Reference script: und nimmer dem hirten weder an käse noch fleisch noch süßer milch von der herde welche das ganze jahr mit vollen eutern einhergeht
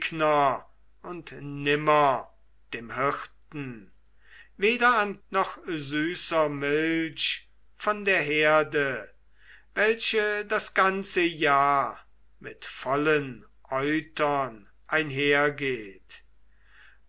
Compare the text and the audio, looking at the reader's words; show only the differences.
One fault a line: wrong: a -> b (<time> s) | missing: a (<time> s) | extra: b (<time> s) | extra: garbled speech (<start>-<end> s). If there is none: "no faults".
missing: käse noch fleisch (5.2 s)